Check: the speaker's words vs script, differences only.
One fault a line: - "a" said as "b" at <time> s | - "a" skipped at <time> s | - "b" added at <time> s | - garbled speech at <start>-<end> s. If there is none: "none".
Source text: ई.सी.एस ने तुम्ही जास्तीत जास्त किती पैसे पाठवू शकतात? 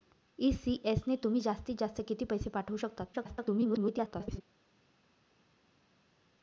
- garbled speech at 3.1-4.4 s